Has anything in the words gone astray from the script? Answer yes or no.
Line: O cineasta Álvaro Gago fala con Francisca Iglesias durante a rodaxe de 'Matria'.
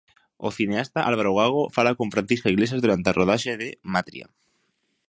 no